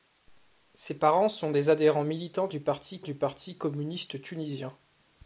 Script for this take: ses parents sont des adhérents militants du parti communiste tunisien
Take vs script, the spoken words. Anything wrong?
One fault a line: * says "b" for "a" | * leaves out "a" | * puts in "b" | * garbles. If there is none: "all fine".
* puts in "du parti"